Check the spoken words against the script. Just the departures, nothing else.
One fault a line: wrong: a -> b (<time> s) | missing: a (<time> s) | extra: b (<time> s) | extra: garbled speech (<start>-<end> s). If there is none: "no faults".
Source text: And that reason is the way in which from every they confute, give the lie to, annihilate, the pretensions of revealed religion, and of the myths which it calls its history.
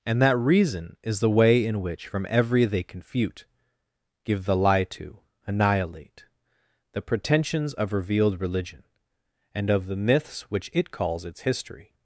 no faults